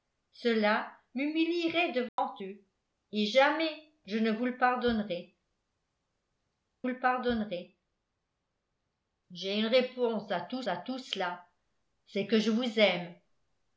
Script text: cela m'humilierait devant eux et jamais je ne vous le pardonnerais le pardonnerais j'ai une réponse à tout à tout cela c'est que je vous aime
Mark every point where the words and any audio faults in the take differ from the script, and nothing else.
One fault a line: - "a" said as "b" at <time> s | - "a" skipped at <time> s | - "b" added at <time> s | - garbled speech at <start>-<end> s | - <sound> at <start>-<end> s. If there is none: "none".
- dropout at 2.1-2.2 s